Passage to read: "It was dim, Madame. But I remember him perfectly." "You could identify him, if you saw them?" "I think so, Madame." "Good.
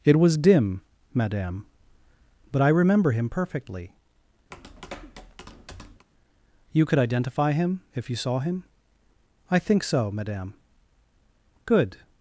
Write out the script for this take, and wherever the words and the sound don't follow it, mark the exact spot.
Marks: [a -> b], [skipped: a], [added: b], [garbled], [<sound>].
"It was dim, Madame. But I remember him perfectly." [tap] "You could identify him, if you saw [them?" -> him] "I think so, Madame." "Good.